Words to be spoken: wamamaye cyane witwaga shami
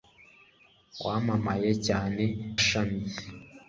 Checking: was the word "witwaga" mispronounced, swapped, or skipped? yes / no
yes